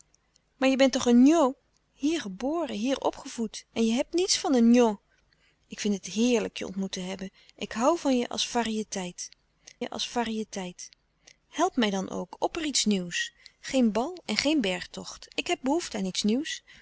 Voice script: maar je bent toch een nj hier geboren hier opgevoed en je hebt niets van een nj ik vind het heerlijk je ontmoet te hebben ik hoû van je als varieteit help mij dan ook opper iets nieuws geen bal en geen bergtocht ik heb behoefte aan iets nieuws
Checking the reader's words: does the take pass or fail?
fail